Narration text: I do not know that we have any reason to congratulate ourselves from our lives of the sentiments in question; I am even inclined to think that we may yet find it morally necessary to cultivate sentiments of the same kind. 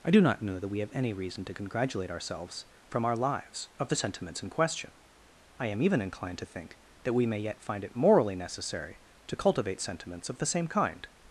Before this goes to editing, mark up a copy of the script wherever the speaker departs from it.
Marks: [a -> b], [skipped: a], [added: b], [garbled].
I do not know that we have any reason to congratulate ourselves from our lives of the sentiments in question; I am even inclined to think that we may yet find it morally necessary to cultivate sentiments of the same kind.